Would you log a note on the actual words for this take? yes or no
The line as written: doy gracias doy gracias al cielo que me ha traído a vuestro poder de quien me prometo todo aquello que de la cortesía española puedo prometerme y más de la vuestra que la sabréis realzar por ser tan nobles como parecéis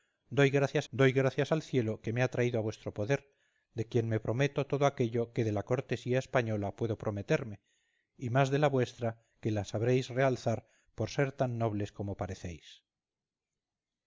no